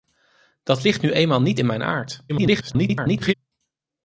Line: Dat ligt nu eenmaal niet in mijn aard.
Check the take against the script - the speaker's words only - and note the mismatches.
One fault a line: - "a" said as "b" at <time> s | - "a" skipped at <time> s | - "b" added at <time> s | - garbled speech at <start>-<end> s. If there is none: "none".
- garbled speech at 2.3-3.3 s